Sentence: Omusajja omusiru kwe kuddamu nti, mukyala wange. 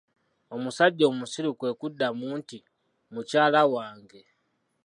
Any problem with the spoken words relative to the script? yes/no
no